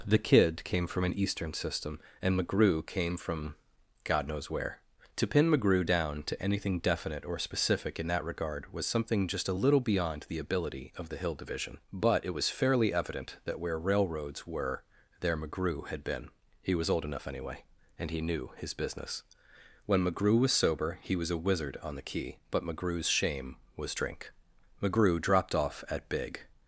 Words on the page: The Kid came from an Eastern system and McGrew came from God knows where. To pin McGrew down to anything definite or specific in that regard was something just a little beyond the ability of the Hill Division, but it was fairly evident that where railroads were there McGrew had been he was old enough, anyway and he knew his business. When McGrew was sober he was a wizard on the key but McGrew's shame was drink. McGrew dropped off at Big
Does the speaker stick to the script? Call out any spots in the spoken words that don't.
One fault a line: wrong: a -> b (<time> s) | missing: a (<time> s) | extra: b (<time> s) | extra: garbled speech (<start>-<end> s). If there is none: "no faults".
no faults